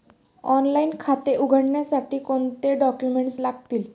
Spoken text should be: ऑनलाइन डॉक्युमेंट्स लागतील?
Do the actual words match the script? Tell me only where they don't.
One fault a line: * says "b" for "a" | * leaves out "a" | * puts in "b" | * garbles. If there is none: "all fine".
* puts in "खाते उघडण्यासाठी कोणते"